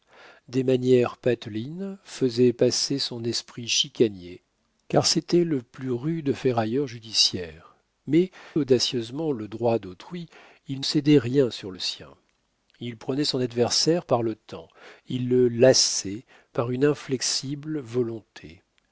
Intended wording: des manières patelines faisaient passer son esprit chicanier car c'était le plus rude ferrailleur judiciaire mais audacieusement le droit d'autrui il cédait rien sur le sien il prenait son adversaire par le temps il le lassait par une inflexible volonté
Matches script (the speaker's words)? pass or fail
pass